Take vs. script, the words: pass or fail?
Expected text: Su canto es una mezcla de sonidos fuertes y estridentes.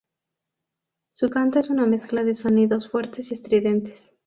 pass